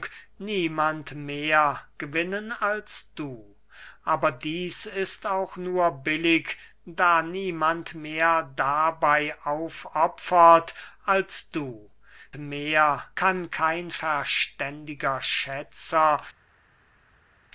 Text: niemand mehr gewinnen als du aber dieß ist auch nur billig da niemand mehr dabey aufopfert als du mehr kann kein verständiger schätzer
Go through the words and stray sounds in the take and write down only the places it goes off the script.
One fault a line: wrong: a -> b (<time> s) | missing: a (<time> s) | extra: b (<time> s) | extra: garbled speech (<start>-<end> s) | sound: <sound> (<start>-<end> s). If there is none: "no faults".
no faults